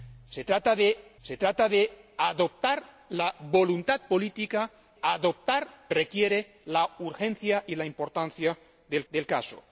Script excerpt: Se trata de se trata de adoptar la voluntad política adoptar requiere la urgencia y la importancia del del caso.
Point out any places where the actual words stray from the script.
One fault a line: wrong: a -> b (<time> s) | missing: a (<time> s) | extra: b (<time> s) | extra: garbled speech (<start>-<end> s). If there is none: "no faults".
no faults